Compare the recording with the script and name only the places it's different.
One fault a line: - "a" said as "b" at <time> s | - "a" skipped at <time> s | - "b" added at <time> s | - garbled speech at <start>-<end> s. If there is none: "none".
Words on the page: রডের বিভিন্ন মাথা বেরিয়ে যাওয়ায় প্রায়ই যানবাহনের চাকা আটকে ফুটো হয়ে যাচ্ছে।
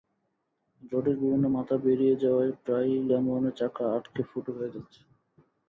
none